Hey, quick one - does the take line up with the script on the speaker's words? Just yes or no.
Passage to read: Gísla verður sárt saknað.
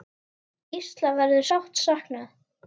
yes